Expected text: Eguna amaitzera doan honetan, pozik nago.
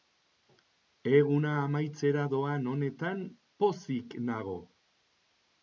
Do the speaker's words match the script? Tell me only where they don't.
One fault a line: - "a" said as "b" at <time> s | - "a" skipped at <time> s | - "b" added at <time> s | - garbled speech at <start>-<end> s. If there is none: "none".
none